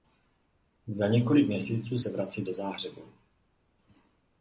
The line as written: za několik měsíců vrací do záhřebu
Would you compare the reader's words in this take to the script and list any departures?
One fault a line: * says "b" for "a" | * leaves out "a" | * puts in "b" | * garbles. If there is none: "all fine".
* puts in "se"